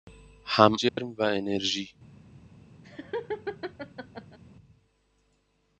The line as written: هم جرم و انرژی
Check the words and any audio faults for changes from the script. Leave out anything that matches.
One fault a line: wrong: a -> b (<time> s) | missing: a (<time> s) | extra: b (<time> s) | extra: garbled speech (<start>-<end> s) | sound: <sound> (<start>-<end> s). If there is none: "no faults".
sound: dropout (0.9-1.0 s)
sound: laugh (2.8-4.4 s)